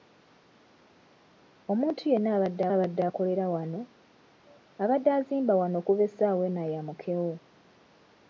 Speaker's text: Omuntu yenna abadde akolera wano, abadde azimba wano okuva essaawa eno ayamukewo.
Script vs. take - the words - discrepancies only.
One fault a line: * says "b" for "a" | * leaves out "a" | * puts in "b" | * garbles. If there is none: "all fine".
* puts in "abadde"